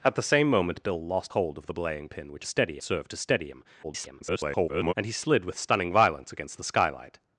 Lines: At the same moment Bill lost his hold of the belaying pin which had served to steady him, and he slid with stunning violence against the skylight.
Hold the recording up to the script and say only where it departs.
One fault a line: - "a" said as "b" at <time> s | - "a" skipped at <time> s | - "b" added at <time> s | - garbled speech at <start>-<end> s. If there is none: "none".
- "his" skipped at 1.3 s
- "had" said as "steady" at 2.4 s
- garbled speech at 3.8-4.9 s